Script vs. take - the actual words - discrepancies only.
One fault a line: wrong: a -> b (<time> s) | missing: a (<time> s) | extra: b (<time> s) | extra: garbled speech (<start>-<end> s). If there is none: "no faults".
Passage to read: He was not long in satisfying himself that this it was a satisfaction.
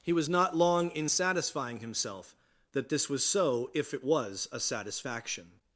extra: was so if (3.1 s)